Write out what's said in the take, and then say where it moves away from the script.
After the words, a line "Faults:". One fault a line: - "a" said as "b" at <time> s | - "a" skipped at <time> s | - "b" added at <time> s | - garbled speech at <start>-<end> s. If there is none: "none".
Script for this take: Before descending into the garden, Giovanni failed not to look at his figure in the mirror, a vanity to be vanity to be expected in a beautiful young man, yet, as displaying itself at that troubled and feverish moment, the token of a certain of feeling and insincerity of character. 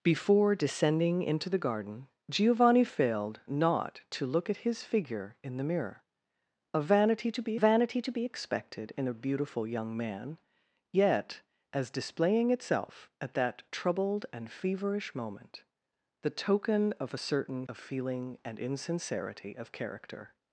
Before descending into the garden, Giovanni failed not to look at his figure in the mirror, a vanity to be vanity to be expected in a beautiful young man, yet, as displaying itself at that troubled and feverish moment, the token of a certain of feeling and insincerity of character.
Faults:
none